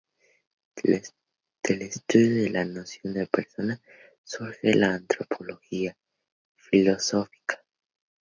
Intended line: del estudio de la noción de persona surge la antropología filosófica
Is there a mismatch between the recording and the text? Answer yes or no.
no